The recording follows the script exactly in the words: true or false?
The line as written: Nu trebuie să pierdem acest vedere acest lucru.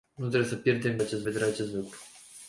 true